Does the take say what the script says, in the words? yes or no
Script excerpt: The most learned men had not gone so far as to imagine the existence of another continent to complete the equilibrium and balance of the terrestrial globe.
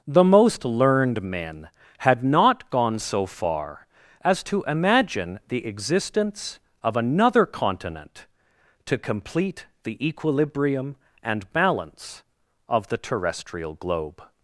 yes